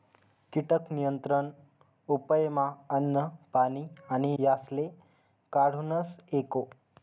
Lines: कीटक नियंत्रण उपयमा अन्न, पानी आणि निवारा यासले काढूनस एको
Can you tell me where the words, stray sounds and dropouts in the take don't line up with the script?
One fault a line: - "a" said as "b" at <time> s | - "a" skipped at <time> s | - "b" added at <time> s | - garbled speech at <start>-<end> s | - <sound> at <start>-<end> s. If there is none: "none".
- "निवारा" skipped at 4.3 s